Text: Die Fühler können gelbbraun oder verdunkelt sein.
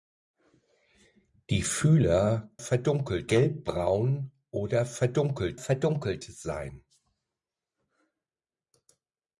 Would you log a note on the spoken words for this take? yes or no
yes